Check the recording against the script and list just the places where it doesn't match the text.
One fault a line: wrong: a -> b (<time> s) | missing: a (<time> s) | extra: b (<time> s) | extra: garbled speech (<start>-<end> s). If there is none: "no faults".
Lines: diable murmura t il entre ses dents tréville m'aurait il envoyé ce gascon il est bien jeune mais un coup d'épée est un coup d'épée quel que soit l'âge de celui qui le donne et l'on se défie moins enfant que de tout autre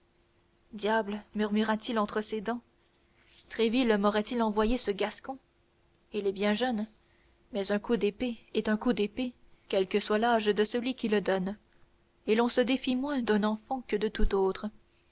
extra: d'un (13.2 s)